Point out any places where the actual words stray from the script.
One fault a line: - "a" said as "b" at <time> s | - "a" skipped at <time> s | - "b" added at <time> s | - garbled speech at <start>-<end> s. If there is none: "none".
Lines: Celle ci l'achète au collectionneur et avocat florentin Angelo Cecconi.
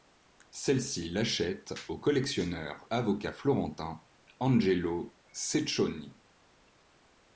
- "et" skipped at 2.9 s